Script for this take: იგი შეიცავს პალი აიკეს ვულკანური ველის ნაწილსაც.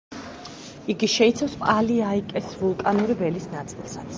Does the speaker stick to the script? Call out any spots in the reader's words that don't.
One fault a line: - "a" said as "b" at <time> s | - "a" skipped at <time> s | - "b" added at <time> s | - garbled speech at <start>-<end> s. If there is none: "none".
none